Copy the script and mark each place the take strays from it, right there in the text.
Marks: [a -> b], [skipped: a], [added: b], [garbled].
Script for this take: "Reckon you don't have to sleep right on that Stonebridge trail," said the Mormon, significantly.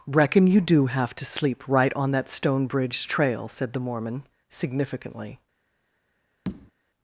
"Reckon you [don't -> do] have to sleep right on that Stonebridge trail," said the Mormon, significantly.